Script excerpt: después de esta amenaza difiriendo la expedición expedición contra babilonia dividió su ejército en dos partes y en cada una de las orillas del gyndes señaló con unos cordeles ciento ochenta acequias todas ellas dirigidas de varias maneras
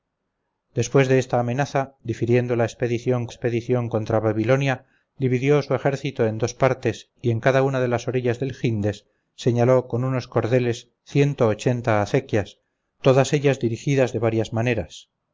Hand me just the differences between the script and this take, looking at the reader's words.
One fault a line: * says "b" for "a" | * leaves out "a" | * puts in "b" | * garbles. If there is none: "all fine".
all fine